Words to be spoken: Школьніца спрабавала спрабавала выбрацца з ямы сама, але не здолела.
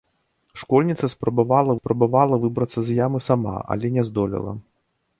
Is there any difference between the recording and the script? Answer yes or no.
no